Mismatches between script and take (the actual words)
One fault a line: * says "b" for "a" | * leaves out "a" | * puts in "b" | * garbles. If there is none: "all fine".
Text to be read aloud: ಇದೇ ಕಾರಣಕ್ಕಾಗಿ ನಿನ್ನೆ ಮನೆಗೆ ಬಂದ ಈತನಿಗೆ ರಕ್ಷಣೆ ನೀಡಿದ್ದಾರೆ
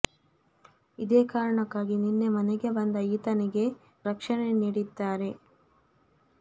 all fine